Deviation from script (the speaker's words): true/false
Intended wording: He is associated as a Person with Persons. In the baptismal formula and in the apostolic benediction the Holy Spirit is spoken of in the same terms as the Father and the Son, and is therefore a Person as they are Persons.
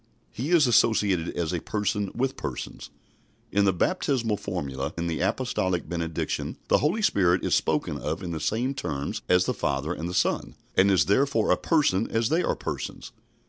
true